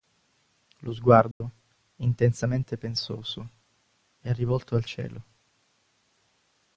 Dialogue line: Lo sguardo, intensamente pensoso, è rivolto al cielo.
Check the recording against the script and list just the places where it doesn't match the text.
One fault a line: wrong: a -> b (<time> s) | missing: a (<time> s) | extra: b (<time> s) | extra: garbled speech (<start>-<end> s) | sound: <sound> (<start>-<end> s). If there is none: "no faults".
sound: dropout (1.3-1.4 s)